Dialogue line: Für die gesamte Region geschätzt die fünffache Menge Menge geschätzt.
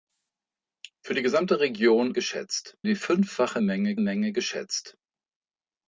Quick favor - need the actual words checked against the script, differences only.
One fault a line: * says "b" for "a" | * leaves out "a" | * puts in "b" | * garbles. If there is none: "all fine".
all fine